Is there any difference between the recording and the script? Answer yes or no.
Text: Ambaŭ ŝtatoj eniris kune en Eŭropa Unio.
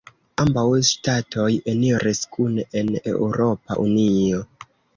no